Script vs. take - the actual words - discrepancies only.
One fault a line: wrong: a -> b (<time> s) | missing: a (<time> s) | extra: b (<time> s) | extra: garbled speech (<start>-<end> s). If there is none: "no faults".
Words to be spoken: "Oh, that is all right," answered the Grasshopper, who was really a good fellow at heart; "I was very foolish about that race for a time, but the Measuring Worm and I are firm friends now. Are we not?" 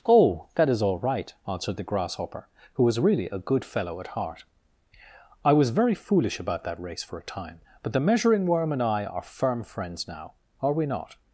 no faults